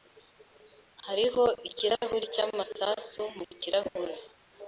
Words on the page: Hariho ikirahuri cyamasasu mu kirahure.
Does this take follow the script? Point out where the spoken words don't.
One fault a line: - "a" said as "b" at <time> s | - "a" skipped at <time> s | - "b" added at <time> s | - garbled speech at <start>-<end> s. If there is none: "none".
none